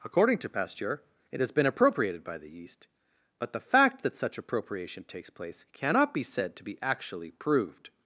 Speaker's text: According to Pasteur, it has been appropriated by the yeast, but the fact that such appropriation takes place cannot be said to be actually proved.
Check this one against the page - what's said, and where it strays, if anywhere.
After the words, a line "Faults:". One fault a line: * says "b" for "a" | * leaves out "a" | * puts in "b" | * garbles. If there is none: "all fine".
According to Pasteur, it has been appropriated by the yeast, but the fact that such appropriation takes place cannot be said to be actually proved.
Faults:
all fine